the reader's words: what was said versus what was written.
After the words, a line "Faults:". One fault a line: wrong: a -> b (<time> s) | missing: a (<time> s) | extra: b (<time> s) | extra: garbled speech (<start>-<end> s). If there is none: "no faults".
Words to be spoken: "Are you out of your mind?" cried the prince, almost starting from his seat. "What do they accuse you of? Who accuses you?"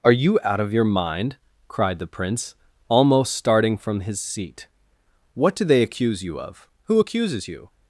"Are you out of your mind?" cried the prince, almost starting from his seat. "What do they accuse you of? Who accuses you?"
Faults:
no faults